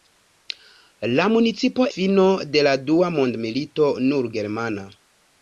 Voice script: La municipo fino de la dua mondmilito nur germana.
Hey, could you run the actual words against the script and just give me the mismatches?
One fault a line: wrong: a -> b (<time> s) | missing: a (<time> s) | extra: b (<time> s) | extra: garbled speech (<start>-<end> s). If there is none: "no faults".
no faults